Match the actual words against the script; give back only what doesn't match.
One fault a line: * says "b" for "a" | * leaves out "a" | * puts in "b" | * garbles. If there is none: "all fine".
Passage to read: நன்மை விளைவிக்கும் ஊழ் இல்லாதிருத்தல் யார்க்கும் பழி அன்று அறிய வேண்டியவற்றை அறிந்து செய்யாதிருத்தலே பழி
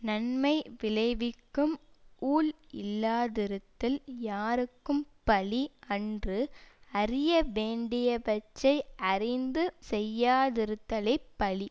all fine